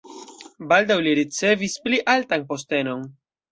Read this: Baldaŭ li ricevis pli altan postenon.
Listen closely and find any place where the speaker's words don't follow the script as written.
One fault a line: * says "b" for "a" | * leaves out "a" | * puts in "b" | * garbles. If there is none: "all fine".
all fine